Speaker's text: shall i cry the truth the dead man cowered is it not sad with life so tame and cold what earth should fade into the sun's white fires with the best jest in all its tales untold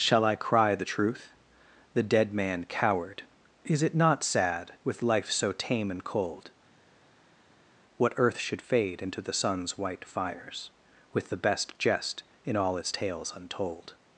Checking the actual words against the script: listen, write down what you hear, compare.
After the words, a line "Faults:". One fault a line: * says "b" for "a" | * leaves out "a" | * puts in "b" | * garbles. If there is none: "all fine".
shall i cry the truth the dead man cowered is it not sad with life so tame and cold what earth should fade into the sun's white fires with the best jest in all its tales untold
Faults:
all fine